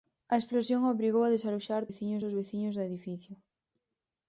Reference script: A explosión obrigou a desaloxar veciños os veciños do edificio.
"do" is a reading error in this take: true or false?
false